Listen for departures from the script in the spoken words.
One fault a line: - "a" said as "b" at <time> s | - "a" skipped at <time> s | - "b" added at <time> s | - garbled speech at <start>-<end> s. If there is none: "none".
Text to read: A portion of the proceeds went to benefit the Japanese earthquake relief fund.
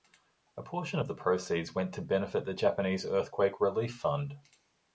none